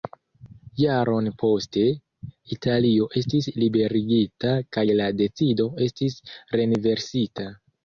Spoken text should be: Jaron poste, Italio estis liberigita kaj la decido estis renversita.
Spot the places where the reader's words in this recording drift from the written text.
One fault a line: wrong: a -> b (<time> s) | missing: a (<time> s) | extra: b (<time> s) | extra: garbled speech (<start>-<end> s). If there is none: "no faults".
no faults